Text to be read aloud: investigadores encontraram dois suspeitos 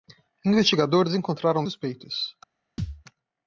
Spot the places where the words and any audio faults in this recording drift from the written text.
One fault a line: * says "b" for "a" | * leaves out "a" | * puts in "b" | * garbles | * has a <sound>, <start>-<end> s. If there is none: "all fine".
* leaves out "dois"
* has a thud, 2.8-3.0 s